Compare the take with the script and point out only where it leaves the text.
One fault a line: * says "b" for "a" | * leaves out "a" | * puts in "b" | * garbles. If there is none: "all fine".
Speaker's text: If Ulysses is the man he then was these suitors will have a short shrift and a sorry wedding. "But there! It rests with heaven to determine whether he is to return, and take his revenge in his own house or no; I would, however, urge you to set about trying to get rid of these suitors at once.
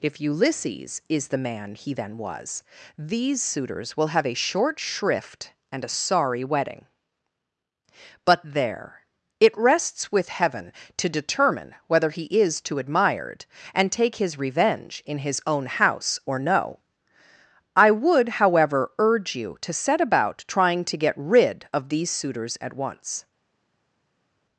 * says "admired" for "return"